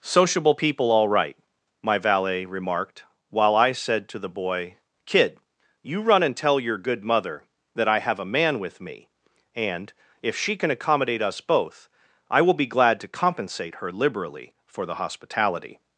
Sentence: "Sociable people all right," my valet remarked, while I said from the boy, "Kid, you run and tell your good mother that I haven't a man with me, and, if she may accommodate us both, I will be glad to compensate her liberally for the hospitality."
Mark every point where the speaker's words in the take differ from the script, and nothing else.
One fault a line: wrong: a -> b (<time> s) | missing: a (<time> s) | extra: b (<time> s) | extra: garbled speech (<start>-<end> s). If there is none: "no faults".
wrong: from -> to (4.1 s)
wrong: haven't -> have (8.0 s)
wrong: may -> can (10.5 s)